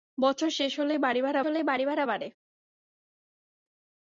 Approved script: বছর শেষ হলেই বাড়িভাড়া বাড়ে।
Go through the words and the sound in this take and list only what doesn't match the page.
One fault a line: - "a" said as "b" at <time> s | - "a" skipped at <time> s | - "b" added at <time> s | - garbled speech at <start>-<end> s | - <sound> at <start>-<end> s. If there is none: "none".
- "হলেই বাড়িভাড়া" added at 1.4 s